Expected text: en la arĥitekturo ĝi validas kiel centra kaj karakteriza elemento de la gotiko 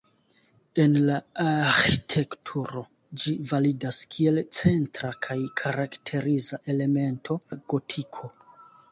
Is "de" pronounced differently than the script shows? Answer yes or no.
yes